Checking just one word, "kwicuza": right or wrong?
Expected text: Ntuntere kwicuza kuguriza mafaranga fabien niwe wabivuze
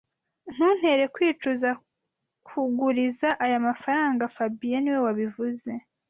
right